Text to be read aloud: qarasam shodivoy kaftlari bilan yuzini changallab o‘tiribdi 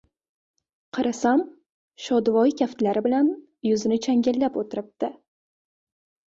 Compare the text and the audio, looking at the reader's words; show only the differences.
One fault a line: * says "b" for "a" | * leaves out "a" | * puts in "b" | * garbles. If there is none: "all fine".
all fine